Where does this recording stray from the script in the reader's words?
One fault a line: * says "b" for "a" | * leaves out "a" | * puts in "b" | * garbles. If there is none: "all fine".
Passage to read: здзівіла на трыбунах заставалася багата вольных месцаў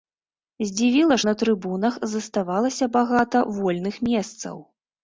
all fine